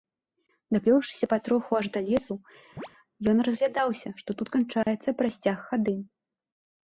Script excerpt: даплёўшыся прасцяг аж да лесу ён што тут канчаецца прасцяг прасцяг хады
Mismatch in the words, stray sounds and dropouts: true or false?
true